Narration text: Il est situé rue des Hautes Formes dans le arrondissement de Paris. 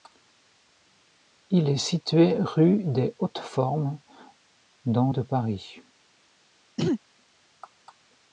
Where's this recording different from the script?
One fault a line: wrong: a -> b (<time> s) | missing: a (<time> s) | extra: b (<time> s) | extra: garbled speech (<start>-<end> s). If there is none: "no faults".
missing: le arrondissement (5.1 s)